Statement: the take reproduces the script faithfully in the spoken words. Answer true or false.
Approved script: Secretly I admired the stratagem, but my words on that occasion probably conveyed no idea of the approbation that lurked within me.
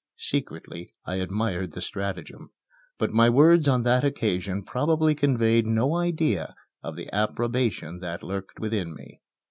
true